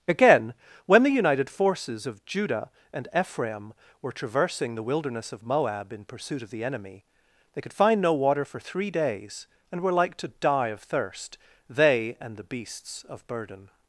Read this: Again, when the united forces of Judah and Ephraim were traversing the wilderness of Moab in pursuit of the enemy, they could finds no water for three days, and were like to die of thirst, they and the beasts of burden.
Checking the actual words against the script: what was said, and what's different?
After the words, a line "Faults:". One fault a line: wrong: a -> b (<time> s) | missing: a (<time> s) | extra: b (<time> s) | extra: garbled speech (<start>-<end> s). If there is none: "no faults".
Again, when the united forces of Judah and Ephraim were traversing the wilderness of Moab in pursuit of the enemy, they could find no water for three days, and were like to die of thirst, they and the beasts of burden.
Faults:
wrong: finds -> find (7.7 s)